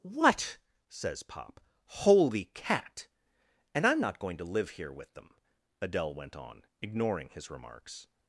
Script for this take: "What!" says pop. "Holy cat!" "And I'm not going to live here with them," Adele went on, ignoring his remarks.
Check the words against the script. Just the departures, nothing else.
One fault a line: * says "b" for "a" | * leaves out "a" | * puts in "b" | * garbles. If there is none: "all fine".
all fine